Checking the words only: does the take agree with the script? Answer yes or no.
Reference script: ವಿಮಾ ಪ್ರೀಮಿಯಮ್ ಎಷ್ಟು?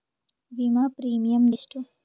yes